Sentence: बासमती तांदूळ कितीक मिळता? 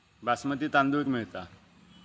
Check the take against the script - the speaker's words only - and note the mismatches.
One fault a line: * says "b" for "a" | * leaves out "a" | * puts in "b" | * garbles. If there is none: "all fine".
* leaves out "कितीक"